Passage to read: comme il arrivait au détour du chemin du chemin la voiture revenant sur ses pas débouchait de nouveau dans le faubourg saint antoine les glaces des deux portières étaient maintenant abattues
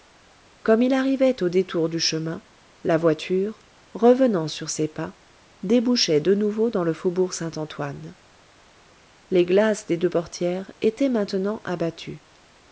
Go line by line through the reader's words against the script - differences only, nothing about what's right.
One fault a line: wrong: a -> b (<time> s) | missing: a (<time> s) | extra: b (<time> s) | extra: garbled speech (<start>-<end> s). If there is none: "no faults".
missing: du chemin (2.4 s)